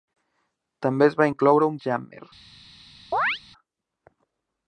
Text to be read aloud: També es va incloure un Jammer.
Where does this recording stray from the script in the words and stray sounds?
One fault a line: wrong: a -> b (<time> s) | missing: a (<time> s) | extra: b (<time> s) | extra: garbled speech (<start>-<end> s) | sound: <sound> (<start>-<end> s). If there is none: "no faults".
sound: chirp (3.1-3.4 s)